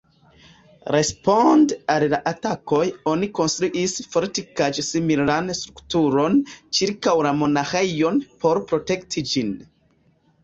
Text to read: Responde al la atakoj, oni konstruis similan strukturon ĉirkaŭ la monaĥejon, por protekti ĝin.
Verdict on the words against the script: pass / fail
fail